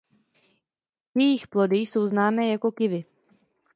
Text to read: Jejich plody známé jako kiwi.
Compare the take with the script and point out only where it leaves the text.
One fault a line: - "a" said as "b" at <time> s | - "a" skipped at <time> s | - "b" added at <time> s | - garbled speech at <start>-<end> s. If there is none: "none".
- "jsou" added at 1.8 s